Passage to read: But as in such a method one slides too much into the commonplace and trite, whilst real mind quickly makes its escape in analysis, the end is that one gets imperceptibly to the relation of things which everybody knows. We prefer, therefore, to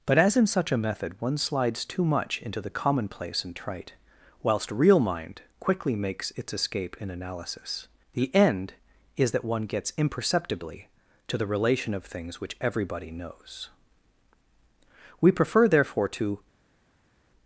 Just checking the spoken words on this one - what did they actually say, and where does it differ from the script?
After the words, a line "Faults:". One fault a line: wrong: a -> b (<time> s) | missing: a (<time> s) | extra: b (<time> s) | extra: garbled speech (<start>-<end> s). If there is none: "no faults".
But as in such a method one slides too much into the commonplace and trite, whilst real mind quickly makes its escape in analysis, the end is that one gets imperceptibly to the relation of things which everybody knows. We prefer, therefore, to
Faults:
no faults